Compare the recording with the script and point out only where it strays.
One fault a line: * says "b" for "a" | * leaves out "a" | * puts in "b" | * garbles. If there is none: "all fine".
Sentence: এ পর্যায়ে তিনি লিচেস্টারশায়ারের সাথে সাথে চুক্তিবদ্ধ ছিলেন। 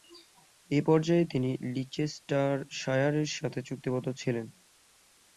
* leaves out "সাথে"